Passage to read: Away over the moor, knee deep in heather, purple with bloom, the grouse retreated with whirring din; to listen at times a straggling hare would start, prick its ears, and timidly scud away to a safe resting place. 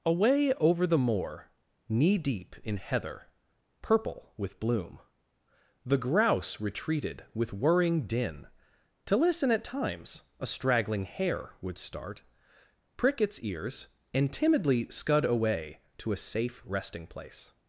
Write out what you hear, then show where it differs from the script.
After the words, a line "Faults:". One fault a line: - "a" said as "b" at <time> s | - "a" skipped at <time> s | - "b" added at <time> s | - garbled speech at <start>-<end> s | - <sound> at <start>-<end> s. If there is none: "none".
Away over the moor, knee deep in heather, purple with bloom, the grouse retreated with whirring din; to listen at times a straggling hare would start, prick its ears, and timidly scud away to a safe resting place.
Faults:
none